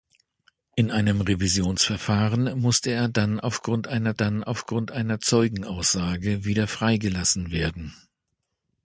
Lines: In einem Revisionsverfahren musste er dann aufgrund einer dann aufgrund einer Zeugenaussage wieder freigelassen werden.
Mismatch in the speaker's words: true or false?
false